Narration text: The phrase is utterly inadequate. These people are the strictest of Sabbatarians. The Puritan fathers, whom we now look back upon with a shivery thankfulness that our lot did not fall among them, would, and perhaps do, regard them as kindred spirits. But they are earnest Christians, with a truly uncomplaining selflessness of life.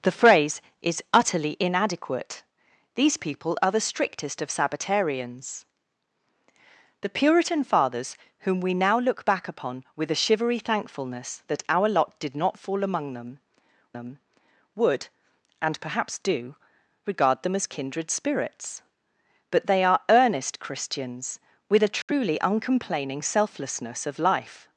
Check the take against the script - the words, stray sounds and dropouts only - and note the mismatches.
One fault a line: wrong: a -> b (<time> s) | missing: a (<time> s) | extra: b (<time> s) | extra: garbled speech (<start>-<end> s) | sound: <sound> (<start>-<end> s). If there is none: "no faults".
extra: them (13.9 s)
sound: dropout (22.0-22.1 s)